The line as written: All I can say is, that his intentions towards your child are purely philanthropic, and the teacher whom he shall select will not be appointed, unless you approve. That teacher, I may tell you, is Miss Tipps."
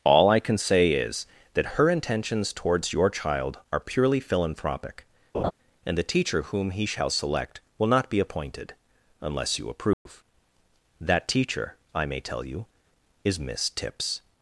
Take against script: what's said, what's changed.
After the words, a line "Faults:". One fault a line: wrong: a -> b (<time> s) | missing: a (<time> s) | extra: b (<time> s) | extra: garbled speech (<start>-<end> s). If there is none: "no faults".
All I can say is, that her intentions towards your child are purely philanthropic, and the teacher whom he shall select will not be appointed, unless you approve. That teacher, I may tell you, is Miss Tipps."
Faults:
wrong: his -> her (1.8 s)